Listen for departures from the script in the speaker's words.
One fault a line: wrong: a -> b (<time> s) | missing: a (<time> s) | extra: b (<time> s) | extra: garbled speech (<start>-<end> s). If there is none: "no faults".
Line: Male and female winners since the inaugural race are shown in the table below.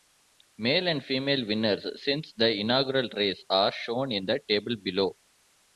no faults